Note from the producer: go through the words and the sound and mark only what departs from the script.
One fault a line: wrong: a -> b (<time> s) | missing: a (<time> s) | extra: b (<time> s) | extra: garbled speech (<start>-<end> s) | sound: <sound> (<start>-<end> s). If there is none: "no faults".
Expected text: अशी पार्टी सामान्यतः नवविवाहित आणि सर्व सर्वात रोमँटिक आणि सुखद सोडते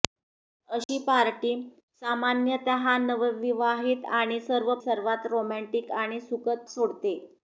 sound: dropout (0.8-0.9 s)